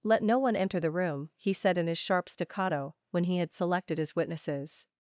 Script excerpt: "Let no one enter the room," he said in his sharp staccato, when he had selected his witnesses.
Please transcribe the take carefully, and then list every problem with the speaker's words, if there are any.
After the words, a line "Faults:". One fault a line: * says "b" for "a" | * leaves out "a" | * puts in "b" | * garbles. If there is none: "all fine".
"Let no one enter the room," he said in his sharp staccato, when he had selected his witnesses.
Faults:
all fine